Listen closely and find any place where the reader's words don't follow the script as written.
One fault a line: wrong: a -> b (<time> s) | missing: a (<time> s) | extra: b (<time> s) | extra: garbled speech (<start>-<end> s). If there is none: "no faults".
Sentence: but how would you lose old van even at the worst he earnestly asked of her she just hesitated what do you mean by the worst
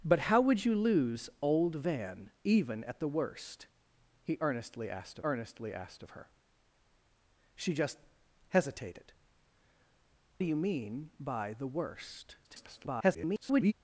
extra: earnestly asked (5.2 s)
missing: what (9.1 s)
extra: garbled speech (12.4-13.7 s)